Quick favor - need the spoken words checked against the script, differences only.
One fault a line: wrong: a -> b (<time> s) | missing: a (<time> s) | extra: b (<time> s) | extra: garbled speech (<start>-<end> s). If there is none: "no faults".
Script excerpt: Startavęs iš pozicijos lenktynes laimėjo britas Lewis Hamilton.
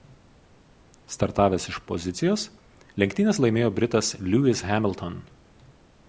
no faults